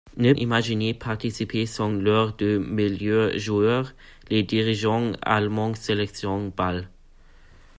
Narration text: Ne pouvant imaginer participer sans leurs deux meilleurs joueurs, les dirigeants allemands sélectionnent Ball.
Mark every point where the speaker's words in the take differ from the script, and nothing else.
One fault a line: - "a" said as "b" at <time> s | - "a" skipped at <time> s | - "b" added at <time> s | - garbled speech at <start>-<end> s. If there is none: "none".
- "pouvant" skipped at 0.3 s